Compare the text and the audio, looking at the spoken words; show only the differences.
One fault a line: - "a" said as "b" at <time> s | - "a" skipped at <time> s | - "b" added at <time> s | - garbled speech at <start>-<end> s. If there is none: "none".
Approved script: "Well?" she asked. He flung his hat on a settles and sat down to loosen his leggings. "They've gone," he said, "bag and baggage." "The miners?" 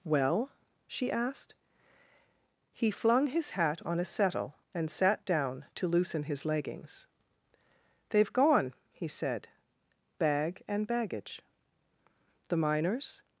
- "settles" said as "settle" at 4.0 s